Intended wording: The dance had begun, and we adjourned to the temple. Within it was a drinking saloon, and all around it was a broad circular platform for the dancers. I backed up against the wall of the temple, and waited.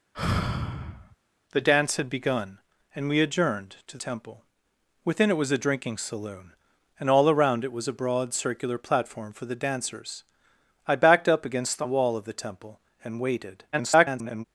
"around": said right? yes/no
yes